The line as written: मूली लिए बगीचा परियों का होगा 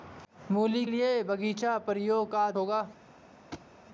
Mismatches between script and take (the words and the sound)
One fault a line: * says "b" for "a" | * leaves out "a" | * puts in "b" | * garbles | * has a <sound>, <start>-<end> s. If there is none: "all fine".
* has a thud, 3.5-3.7 s